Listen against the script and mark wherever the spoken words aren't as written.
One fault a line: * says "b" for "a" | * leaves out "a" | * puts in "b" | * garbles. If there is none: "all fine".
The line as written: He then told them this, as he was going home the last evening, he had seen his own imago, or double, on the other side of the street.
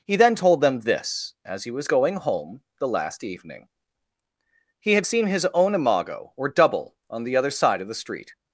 all fine